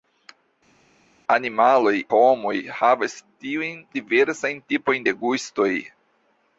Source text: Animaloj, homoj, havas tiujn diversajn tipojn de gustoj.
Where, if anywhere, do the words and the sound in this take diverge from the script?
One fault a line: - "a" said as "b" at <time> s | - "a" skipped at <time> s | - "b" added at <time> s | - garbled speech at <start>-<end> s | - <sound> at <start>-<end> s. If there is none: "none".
none